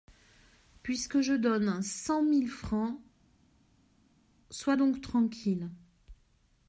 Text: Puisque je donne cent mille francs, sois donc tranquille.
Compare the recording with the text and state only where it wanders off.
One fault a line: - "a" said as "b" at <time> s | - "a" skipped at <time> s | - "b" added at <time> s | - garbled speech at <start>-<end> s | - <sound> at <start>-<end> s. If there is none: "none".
none